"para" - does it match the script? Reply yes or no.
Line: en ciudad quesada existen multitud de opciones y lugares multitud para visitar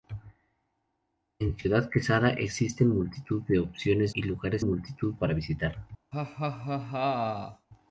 yes